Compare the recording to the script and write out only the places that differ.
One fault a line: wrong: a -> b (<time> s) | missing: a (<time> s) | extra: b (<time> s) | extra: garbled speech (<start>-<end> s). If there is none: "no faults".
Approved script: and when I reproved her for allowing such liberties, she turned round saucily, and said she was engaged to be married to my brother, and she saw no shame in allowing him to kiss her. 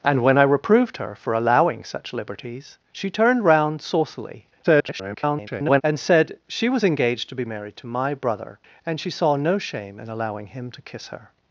extra: garbled speech (4.6-5.8 s)